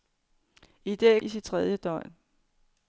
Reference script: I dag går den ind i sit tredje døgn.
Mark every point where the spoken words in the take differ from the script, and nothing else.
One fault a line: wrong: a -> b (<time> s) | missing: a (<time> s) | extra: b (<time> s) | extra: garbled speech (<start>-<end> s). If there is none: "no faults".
missing: går den ind (1.2 s)